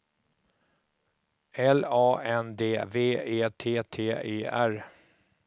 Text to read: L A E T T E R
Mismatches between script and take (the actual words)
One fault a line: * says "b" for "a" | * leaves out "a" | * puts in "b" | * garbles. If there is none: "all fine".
* puts in "N D V"